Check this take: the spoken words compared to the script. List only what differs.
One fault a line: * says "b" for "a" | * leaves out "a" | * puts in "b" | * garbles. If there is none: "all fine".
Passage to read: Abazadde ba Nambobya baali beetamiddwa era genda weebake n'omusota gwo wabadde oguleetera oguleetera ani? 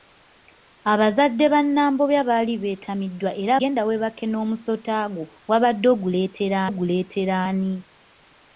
all fine